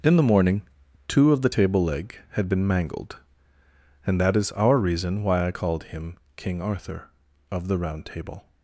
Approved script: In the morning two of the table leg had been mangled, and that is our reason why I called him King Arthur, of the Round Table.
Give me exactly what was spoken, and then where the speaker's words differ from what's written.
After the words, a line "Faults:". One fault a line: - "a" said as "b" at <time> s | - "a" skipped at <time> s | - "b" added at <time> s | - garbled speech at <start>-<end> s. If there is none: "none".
In the morning two of the table leg had been mangled, and that is our reason why I called him King Arthur, of the Round Table.
Faults:
none